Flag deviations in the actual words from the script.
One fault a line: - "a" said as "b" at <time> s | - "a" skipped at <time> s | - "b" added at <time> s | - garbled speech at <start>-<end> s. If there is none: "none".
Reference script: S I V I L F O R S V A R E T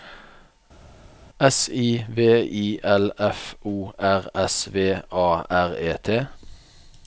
none